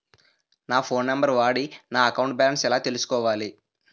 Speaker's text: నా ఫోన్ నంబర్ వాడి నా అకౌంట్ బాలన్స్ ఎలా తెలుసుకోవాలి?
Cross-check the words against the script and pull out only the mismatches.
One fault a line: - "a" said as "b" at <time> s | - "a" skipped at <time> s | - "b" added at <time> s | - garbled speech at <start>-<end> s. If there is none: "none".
none